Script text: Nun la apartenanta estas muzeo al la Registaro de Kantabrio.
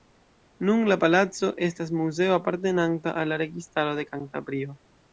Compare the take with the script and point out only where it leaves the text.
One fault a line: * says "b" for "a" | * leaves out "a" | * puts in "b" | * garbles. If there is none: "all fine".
* says "palaco" for "apartenanta"
* puts in "apartenanta"